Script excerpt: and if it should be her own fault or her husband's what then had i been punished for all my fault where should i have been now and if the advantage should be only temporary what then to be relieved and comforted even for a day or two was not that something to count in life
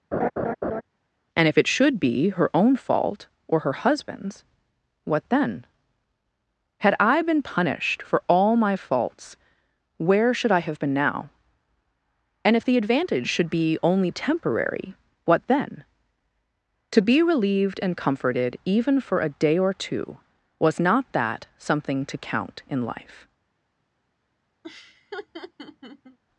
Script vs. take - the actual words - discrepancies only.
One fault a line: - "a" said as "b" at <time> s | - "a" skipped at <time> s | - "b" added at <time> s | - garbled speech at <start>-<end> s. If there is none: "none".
- "fault" said as "faults" at 8.8 s